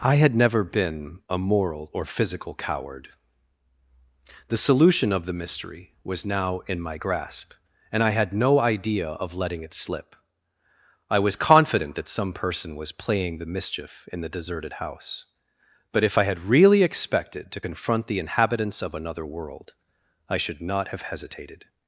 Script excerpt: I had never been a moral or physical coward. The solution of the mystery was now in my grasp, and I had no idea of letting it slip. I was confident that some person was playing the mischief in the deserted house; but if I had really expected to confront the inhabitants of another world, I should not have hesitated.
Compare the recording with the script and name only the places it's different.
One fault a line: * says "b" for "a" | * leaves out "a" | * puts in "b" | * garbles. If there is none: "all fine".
all fine